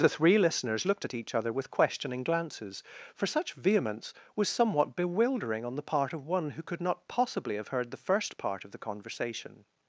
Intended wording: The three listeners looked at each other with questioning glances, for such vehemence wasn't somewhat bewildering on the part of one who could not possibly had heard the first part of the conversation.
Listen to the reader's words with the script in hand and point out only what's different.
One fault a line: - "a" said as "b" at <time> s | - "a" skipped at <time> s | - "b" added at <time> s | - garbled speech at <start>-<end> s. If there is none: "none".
- "wasn't" said as "was" at 4.3 s
- "had" said as "have" at 7.6 s